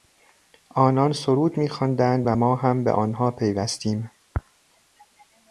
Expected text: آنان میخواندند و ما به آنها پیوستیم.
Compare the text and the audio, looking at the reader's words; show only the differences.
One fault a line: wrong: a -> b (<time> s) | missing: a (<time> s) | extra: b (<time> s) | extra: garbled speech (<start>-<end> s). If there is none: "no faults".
extra: سرود (1.1 s)
extra: هم (2.6 s)